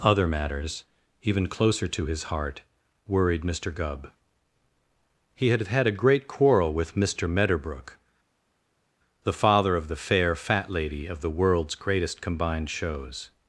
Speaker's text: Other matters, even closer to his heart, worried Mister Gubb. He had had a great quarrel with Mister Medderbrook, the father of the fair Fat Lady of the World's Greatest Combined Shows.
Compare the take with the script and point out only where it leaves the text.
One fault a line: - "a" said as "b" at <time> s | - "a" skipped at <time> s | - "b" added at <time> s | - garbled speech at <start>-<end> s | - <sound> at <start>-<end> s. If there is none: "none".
none